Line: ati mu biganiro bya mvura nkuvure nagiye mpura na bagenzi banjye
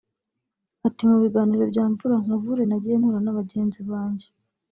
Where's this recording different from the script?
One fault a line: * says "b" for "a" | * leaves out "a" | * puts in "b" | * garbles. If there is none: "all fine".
all fine